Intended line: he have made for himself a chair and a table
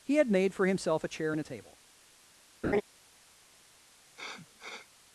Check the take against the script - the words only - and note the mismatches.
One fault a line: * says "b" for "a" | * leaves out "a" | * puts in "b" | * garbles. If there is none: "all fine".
* says "had" for "have"